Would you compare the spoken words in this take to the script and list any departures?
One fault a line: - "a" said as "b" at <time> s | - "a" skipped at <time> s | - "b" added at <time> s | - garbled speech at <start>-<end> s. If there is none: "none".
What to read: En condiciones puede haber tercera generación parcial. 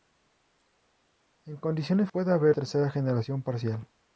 none